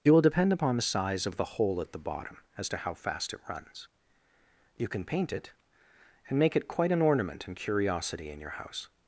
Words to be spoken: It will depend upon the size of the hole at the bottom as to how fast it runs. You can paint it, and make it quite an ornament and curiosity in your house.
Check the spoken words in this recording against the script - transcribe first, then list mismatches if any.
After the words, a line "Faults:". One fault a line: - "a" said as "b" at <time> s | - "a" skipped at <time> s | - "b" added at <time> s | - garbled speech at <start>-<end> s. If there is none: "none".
It will depend upon the size of the hole at the bottom as to how fast it runs. You can paint it, and make it quite an ornament and curiosity in your house.
Faults:
none